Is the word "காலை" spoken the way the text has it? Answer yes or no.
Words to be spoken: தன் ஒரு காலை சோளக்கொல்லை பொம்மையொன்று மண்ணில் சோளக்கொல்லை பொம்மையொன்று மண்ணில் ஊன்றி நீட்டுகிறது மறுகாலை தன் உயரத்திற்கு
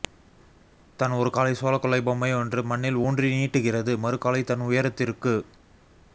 yes